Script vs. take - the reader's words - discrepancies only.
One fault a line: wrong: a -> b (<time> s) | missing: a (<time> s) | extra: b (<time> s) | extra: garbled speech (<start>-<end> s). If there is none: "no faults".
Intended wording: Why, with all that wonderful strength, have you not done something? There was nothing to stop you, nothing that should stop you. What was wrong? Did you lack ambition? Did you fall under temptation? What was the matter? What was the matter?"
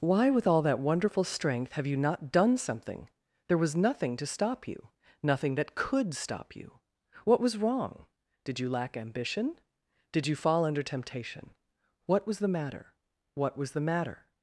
wrong: should -> could (5.8 s)